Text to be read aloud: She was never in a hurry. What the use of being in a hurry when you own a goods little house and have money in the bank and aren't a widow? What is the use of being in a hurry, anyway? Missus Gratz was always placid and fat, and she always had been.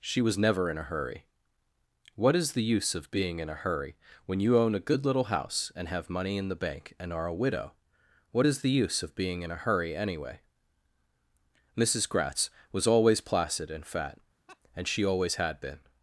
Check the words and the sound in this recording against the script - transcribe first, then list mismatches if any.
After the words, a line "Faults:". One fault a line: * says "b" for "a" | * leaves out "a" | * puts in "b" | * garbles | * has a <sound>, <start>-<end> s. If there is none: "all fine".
She was never in a hurry. What is the use of being in a hurry when you own a good little house and have money in the bank and are a widow? What is the use of being in a hurry, anyway? Missus Gratz was always placid and fat, and she always had been.
Faults:
* puts in "is"
* says "good" for "goods"
* says "are" for "aren't"
* has a laugh, 14.5-14.6 s